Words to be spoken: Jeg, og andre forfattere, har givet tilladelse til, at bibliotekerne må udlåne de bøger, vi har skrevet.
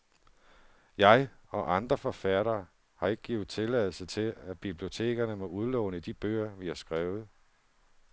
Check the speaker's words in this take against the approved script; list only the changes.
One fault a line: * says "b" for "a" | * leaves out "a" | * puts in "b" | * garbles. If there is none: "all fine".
* puts in "ikke"